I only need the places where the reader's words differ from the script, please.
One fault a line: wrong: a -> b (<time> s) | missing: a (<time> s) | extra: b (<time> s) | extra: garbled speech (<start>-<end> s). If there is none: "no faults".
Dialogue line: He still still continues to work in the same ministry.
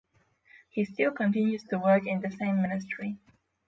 missing: still (1.1 s)